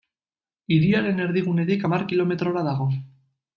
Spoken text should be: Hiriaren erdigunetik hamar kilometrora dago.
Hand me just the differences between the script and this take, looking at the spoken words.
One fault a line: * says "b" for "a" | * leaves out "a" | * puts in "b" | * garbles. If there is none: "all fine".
all fine